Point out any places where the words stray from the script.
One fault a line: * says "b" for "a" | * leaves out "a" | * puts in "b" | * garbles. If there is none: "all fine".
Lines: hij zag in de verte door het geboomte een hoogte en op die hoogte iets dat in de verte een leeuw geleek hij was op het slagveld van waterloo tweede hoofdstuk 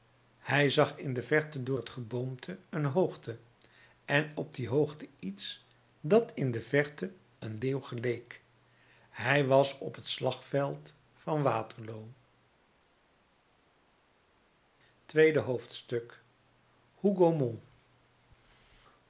all fine